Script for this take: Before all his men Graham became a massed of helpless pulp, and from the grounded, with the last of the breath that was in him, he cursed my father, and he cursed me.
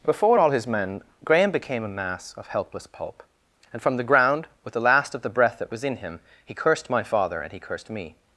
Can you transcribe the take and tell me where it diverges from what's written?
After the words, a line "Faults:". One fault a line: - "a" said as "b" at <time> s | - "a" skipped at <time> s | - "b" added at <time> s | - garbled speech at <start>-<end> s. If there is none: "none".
Before all his men Graham became a mass of helpless pulp, and from the ground, with the last of the breath that was in him, he cursed my father, and he cursed me.
Faults:
- "massed" said as "mass" at 1.9 s
- "grounded" said as "ground" at 4.0 s